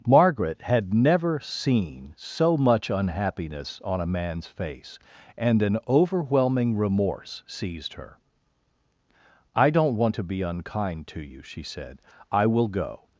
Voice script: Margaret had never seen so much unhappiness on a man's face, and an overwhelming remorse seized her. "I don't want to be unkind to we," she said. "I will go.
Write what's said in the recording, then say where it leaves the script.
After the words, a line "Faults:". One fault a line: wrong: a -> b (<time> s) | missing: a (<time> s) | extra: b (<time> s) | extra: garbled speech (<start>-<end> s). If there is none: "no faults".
Margaret had never seen so much unhappiness on a man's face, and an overwhelming remorse seized her. "I don't want to be unkind to you," she said. "I will go.
Faults:
wrong: we -> you (11.2 s)